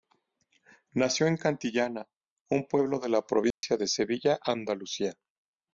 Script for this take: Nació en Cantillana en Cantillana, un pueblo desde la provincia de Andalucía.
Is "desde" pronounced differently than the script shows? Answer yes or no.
yes